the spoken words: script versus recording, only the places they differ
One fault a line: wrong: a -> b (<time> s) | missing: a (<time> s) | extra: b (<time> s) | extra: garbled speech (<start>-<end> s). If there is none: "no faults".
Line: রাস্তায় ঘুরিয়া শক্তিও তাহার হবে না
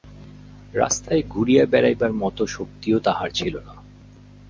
extra: বেড়াইবার মতো (1.6 s)
wrong: হবে -> ছিল (3.3 s)